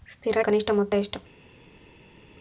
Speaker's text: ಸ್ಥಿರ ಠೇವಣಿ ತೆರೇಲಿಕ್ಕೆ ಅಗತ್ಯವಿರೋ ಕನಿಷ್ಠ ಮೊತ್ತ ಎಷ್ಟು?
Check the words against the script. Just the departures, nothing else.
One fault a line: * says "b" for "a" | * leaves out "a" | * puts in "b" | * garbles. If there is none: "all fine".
* leaves out "ಠೇವಣಿ ತೆರೇಲಿಕ್ಕೆ ಅಗತ್ಯವಿರೋ"